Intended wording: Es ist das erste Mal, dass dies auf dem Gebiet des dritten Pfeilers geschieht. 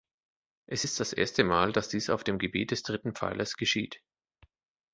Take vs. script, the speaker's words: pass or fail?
pass